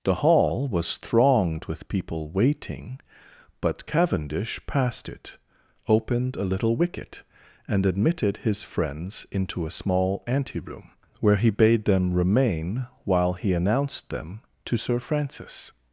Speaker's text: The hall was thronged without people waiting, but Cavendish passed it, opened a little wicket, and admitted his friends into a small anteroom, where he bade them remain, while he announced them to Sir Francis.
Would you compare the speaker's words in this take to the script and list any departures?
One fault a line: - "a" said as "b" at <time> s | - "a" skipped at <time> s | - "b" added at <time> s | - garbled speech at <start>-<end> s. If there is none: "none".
- "without" said as "with" at 1.6 s